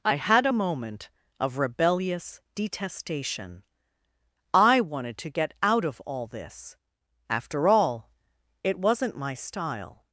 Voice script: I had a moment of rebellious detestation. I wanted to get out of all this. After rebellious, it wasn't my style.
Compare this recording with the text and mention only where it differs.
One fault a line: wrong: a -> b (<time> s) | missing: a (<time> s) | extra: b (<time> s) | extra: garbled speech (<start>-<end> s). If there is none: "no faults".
wrong: rebellious -> all (7.7 s)